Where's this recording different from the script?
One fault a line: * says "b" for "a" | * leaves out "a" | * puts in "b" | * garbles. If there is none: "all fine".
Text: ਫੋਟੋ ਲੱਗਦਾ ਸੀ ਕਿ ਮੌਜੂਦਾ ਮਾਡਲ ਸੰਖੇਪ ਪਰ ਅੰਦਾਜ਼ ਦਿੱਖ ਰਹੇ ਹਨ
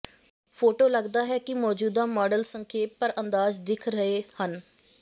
* says "ਹੈ" for "ਸੀ"